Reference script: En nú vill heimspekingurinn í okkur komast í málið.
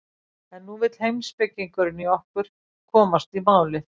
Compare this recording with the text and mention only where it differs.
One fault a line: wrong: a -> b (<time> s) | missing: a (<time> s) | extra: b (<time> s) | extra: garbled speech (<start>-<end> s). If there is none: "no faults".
no faults